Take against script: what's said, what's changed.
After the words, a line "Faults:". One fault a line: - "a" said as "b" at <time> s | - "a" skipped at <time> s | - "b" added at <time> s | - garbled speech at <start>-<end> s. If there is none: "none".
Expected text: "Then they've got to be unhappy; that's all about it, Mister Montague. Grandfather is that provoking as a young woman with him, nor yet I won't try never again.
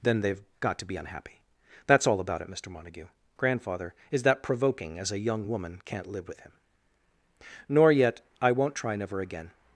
"Then they've got to be unhappy; that's all about it, Mister Montague. Grandfather is that provoking as a young woman can't live with him, nor yet I won't try never again.
Faults:
- "can't live" added at 5.8 s